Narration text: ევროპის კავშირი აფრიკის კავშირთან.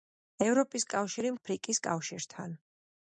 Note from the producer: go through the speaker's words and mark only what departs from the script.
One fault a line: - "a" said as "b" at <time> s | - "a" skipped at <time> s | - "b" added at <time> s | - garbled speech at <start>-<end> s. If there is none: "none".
none